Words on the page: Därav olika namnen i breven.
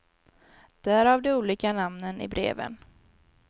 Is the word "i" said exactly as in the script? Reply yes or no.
yes